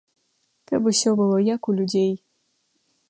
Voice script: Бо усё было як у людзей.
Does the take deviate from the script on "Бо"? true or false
true